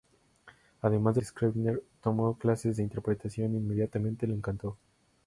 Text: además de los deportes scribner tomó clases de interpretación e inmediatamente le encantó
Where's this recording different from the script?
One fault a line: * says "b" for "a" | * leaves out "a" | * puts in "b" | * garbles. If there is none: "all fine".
* leaves out "los deportes"